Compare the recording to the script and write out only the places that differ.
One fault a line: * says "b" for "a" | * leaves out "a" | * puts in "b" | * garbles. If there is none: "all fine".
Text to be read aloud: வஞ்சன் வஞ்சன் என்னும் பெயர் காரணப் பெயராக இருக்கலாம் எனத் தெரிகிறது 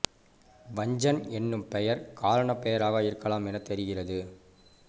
* leaves out "வஞ்சன்"